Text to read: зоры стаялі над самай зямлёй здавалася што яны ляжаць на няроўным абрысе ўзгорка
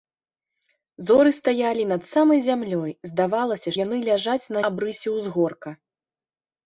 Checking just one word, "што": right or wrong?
wrong